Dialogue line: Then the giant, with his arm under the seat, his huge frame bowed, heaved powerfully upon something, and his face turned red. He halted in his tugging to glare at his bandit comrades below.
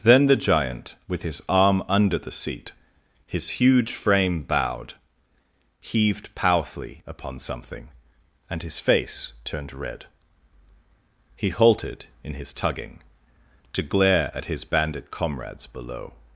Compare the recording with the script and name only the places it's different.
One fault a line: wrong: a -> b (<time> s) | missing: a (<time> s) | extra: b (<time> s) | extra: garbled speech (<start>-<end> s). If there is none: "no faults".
no faults